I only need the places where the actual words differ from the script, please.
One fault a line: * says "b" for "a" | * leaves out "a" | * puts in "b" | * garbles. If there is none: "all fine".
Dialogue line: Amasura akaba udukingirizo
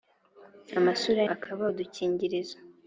all fine